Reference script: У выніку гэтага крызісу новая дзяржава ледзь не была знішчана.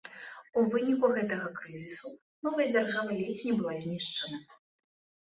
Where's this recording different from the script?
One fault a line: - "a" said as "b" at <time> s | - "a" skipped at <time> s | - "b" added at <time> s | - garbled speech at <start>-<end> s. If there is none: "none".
none